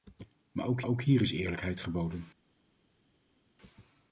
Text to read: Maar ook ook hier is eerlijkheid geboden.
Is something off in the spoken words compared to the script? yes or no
no